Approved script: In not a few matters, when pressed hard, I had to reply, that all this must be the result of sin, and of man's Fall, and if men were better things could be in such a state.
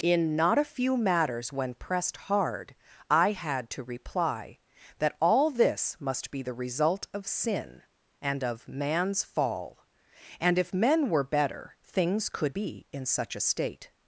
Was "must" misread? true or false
false